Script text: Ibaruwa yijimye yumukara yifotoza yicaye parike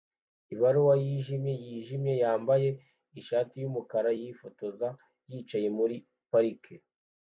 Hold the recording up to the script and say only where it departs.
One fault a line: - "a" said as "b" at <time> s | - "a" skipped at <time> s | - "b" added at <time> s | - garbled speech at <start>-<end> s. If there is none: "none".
- "yijimye yambaye ishati" added at 1.6 s
- "muri" added at 5.8 s